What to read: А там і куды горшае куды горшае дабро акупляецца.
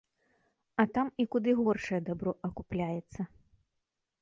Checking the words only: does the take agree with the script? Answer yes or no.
no